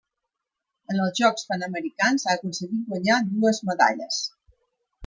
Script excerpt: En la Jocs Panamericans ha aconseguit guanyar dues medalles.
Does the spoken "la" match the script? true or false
false